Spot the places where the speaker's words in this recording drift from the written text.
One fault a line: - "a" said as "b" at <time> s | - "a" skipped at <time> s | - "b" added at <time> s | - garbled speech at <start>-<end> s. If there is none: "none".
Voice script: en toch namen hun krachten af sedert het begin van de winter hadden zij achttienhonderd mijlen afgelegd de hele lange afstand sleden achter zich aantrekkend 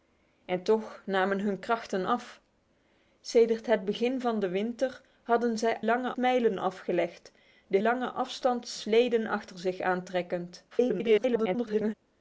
- "achttienhonderd" said as "lange" at 5.8 s
- "hele" skipped at 7.8 s
- garbled speech at 10.7-11.9 s